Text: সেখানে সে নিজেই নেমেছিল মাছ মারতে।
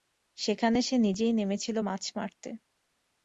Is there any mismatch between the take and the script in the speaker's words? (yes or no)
no